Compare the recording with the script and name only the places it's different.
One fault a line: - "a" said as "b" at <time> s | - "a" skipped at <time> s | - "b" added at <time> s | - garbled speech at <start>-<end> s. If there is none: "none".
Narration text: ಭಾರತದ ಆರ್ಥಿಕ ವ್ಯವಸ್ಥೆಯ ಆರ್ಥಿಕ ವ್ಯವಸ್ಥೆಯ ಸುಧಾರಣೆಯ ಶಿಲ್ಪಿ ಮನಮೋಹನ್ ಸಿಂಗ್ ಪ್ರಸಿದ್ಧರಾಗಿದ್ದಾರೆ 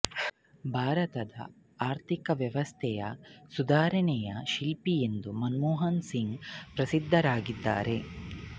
- "ಆರ್ಥಿಕ ವ್ಯವಸ್ಥೆಯ" skipped at 3.0 s
- "ಎಂದು" added at 5.0 s